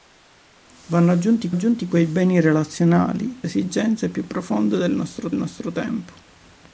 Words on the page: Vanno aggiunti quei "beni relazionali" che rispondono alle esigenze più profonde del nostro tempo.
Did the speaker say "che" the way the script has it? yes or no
no